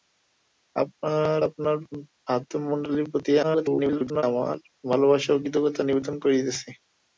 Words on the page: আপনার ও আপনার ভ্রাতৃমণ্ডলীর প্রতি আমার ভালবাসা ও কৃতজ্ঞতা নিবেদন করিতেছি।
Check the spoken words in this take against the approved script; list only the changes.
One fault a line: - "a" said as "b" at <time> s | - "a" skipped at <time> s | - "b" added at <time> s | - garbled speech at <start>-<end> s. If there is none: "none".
- "ও" skipped at 1.4 s
- garbled speech at 3.4-4.2 s